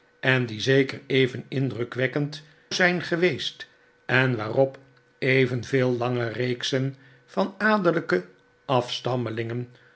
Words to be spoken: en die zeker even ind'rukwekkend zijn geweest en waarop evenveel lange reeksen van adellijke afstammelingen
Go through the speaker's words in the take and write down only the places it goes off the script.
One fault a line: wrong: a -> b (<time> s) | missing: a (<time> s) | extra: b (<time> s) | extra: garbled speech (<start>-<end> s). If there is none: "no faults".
no faults